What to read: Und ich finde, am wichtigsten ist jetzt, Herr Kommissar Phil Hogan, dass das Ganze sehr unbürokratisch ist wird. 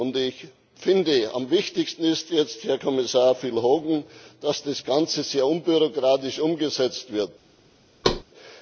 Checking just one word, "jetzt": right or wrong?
right